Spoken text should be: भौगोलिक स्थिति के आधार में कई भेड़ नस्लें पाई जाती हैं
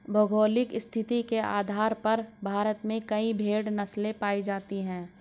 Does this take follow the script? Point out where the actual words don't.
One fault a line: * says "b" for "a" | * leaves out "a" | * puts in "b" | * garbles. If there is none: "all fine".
* puts in "पर भारत"